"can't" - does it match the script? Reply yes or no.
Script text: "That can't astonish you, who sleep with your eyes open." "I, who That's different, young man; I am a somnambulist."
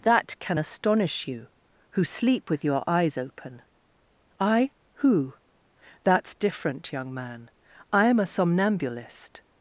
no